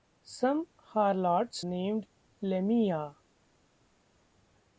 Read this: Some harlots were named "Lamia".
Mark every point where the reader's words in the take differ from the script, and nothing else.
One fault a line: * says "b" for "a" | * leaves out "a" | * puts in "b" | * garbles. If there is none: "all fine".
* leaves out "were"